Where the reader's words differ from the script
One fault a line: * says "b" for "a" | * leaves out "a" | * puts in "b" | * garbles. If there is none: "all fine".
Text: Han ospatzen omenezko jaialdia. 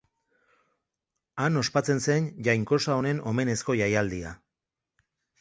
* puts in "zen jainkosa honen"